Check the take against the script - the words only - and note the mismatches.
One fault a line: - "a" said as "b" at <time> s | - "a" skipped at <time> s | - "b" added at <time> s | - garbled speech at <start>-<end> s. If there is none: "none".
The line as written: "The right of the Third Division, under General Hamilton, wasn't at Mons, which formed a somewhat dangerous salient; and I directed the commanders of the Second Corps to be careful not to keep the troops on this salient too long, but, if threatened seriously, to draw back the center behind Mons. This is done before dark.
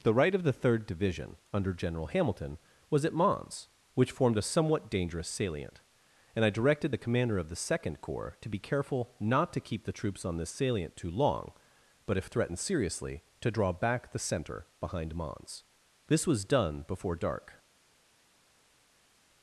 - "wasn't" said as "was" at 2.9 s
- "commanders" said as "commander" at 7.0 s
- "is" said as "was" at 16.3 s